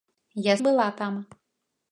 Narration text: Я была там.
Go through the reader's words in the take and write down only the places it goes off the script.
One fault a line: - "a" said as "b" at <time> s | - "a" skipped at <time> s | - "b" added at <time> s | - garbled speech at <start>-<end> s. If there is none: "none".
none